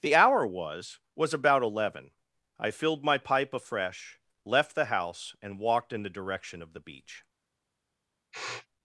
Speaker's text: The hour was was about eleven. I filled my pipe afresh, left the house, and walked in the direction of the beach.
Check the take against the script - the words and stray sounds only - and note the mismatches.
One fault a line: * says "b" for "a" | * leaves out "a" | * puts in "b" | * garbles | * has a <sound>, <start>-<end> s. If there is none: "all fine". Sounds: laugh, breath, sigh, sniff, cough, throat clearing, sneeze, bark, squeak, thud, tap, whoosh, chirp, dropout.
* has a sniff, 8.3-8.7 s